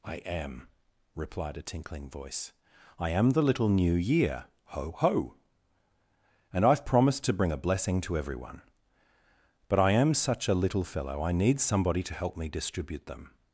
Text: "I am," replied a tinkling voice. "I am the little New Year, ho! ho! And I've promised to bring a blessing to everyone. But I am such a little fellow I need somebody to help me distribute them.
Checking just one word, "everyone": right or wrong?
right